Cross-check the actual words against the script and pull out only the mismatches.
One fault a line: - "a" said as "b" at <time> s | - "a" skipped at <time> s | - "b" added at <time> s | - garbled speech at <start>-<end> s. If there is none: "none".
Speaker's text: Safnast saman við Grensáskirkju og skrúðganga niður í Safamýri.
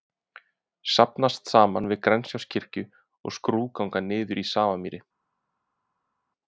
none